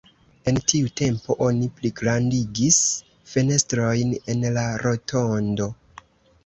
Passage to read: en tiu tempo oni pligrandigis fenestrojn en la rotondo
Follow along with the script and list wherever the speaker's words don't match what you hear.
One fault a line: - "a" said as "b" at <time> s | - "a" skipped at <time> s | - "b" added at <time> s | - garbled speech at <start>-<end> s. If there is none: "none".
none